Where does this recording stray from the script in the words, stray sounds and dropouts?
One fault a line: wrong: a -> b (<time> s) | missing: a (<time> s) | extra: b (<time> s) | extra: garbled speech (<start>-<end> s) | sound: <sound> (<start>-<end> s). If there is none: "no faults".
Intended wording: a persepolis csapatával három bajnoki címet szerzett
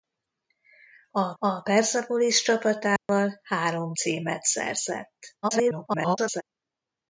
extra: a (1.4 s)
sound: dropout (3.0-3.1 s)
missing: bajnoki (3.9 s)
extra: garbled speech (5.4-6.4 s)